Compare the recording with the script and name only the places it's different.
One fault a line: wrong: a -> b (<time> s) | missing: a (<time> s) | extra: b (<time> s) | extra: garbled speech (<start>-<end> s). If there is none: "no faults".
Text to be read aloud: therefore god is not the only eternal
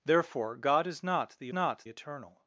wrong: only -> not (1.5 s)